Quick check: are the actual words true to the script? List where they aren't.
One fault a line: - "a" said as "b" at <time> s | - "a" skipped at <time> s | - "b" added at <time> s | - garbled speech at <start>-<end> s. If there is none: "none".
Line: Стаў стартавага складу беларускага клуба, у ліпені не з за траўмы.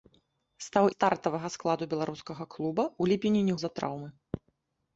none